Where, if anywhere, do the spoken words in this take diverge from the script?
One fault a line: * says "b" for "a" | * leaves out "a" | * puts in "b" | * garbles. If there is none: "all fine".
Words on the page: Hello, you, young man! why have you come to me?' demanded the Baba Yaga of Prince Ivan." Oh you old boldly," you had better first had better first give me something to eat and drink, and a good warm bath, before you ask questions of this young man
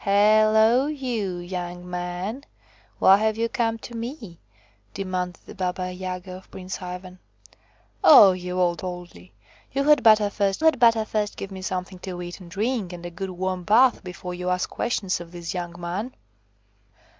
all fine